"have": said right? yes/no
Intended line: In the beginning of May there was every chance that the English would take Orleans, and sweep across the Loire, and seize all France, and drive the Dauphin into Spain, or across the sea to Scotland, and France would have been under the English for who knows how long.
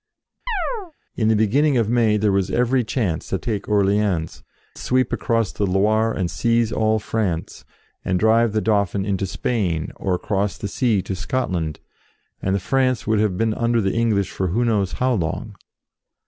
yes